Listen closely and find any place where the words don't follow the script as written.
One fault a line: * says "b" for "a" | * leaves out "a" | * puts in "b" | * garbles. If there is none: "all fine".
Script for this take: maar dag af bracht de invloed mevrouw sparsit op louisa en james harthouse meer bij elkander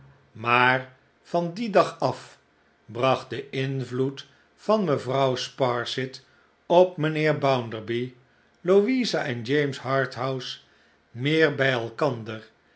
* puts in "van dien"
* puts in "van"
* puts in "mijnheer bounderby"